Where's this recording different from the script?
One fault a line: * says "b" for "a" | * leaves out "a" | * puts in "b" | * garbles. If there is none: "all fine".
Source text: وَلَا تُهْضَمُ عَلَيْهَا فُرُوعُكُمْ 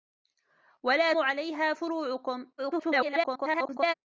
* leaves out "تُهْضَمُ"
* garbles